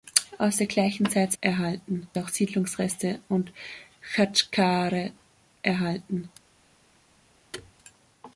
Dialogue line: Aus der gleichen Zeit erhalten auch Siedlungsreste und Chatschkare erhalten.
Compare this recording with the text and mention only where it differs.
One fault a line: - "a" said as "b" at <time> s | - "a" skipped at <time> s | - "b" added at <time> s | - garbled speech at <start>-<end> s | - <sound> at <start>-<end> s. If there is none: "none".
- thud at 7.5-7.7 s